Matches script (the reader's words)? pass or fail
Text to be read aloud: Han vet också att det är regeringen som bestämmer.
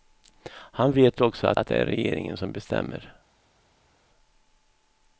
fail